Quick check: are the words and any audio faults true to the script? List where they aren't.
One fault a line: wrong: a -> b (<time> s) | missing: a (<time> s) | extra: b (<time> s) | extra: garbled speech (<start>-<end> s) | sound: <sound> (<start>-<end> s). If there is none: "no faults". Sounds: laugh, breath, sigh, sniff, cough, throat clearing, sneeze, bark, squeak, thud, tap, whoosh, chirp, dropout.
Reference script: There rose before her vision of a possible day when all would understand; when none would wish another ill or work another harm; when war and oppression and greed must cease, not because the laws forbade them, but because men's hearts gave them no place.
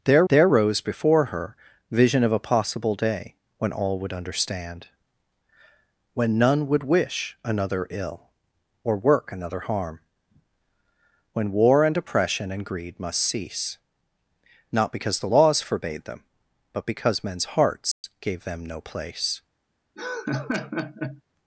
extra: there (0.3 s)
sound: dropout (17.9-18.0 s)
sound: laugh (20.0-21.2 s)